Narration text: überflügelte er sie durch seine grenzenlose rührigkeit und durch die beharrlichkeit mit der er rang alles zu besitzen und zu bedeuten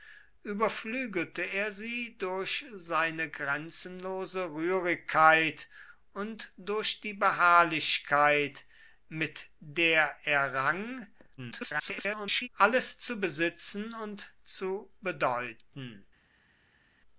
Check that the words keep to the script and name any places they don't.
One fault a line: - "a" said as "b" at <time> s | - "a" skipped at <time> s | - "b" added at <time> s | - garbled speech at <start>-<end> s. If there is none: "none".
- garbled speech at 11.4-12.5 s